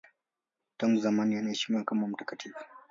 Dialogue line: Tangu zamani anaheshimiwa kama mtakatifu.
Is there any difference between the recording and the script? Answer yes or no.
no